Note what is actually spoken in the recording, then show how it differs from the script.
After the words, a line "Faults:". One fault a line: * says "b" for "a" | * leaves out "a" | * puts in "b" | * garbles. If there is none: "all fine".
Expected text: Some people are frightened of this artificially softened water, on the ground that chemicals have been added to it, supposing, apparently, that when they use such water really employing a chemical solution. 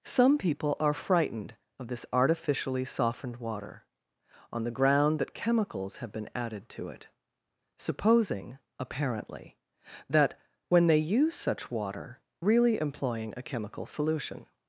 Some people are frightened of this artificially softened water, on the ground that chemicals have been added to it, supposing, apparently, that when they use such water really employing a chemical solution.
Faults:
all fine